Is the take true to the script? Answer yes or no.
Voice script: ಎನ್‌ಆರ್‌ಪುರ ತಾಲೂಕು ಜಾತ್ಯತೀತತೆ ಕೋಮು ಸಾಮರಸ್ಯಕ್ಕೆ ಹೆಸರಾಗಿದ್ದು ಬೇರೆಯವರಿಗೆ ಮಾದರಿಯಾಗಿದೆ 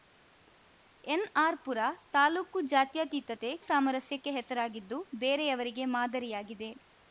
no